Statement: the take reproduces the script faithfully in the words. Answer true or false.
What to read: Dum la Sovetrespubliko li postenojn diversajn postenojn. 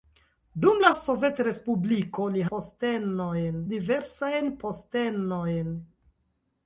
true